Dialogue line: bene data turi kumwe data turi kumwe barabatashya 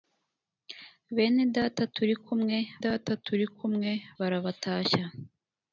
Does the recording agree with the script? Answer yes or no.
yes